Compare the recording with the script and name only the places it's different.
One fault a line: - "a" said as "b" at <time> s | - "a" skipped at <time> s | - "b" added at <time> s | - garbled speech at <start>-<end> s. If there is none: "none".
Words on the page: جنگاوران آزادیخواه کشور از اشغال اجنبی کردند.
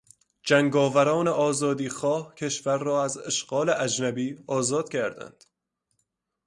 - "را" added at 2.8 s
- "آزاد" added at 4.5 s